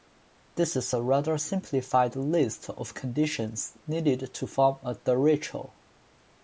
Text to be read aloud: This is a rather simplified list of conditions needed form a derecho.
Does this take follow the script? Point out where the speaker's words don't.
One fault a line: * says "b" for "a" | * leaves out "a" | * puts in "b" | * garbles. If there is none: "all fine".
* puts in "to"